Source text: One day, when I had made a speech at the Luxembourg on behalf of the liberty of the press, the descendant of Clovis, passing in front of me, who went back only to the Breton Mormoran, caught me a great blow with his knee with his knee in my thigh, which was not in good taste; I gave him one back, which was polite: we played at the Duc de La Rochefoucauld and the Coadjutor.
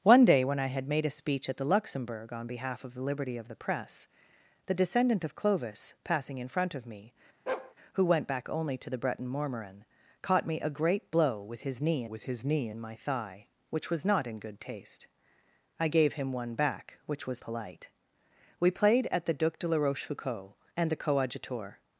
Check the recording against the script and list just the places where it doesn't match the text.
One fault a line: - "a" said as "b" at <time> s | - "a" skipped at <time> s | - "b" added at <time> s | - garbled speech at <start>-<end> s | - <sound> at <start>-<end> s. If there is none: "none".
- bark at 7.5-7.7 s